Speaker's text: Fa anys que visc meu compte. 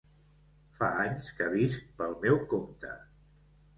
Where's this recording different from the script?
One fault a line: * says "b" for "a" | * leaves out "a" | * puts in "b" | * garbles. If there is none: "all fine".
* puts in "pel"